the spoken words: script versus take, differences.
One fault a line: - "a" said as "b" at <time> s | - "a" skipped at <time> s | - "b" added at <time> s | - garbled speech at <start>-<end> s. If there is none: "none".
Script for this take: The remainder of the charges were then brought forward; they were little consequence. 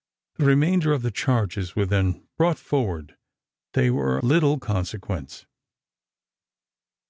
none